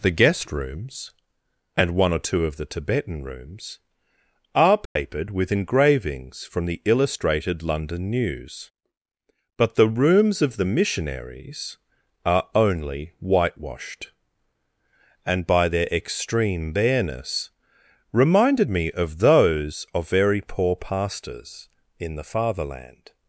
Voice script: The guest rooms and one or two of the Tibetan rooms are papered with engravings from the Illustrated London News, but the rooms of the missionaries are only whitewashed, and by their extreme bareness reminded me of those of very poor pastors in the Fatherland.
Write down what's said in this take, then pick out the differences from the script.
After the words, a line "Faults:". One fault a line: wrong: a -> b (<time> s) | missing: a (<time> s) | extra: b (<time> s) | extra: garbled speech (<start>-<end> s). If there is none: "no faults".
The guest rooms and one or two of the Tibetan rooms are papered with engravings from the Illustrated London News, but the rooms of the missionaries are only whitewashed, and by their extreme bareness reminded me of those of very poor pastors in the Fatherland.
Faults:
no faults